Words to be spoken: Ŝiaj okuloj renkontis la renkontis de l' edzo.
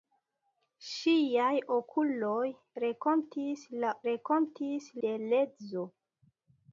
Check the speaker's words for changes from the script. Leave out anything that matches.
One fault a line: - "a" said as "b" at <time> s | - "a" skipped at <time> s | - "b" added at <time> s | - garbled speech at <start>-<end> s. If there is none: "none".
none